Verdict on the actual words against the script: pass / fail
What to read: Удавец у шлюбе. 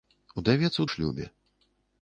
pass